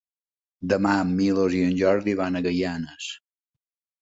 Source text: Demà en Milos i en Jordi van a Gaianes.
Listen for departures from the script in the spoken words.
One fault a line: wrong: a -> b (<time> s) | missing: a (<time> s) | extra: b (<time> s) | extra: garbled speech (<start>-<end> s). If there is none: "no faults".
no faults